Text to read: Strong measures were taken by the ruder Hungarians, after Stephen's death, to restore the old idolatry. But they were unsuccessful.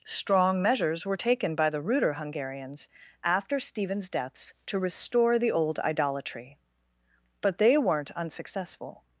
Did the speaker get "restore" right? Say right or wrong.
right